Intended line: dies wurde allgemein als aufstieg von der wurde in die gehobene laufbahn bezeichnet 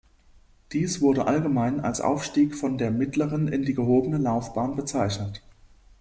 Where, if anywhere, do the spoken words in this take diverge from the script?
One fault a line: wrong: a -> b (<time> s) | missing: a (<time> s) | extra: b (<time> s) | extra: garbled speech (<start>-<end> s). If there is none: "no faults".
wrong: wurde -> mittleren (2.9 s)